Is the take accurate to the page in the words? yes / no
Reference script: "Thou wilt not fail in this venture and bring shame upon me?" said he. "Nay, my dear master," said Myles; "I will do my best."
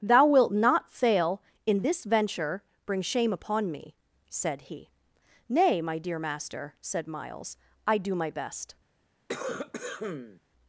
no